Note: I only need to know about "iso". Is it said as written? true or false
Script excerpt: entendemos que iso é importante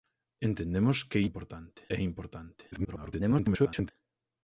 false